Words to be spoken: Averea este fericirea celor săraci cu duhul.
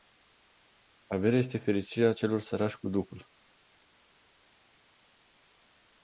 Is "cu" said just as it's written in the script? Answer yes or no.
yes